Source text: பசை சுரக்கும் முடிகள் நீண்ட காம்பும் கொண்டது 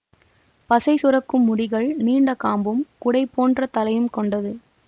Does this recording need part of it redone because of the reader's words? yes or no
yes